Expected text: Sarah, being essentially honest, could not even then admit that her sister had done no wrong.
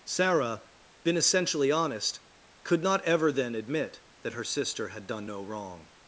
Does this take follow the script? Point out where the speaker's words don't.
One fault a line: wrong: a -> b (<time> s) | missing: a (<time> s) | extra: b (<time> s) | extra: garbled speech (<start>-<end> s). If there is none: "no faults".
wrong: being -> been (1.0 s)
wrong: even -> ever (3.0 s)